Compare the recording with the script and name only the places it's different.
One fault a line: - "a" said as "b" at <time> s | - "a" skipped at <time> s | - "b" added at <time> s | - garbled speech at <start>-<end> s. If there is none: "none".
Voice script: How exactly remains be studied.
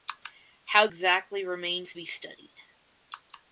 none